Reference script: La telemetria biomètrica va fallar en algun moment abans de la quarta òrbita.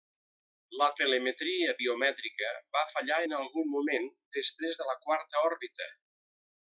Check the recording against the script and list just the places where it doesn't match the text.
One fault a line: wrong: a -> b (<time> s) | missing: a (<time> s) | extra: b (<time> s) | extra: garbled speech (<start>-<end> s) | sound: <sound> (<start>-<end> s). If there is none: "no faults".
wrong: abans -> després (4.4 s)